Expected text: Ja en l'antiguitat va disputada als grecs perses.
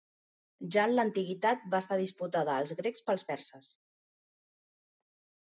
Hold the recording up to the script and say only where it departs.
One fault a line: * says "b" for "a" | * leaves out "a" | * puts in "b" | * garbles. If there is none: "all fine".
* puts in "estar"
* puts in "pels"